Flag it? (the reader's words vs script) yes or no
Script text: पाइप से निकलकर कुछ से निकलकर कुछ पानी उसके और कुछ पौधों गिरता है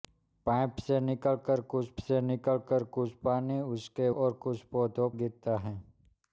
no